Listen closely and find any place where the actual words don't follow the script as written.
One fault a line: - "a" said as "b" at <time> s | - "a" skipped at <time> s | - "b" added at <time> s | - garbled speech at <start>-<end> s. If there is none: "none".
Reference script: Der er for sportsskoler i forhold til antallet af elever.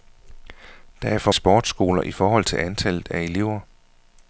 none